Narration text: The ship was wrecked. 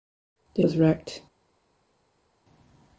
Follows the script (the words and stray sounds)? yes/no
no